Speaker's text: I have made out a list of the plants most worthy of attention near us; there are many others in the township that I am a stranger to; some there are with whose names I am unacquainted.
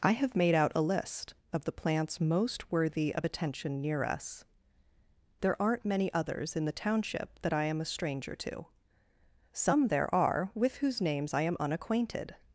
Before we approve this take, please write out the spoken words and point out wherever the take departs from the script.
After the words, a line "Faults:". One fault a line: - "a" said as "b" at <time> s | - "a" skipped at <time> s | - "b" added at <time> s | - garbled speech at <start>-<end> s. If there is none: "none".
I have made out a list of the plants most worthy of attention near us; there aren't many others in the township that I am a stranger to; some there are with whose names I am unacquainted.
Faults:
- "are" said as "aren't" at 5.6 s